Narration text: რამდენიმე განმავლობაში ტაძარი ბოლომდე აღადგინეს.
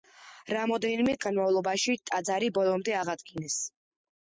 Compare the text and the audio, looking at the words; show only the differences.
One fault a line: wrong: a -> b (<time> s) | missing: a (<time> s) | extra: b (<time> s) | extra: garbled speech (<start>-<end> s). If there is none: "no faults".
no faults